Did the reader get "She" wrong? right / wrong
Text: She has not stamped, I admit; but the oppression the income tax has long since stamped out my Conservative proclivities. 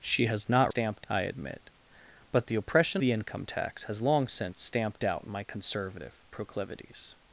right